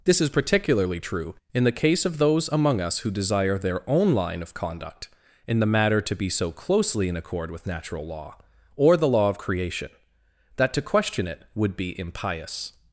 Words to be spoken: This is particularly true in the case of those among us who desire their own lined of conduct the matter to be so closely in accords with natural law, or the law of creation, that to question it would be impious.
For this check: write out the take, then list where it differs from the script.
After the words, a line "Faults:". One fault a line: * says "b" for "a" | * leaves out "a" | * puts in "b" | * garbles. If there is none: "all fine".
This is particularly true in the case of those among us who desire their own line of conduct in the matter to be so closely in accord with natural law, or the law of creation, that to question it would be impious.
Faults:
* says "line" for "lined"
* puts in "in"
* says "accord" for "accords"